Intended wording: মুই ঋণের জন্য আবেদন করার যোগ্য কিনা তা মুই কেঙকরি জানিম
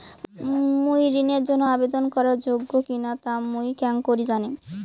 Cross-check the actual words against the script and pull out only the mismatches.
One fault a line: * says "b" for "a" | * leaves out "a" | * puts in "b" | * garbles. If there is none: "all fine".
all fine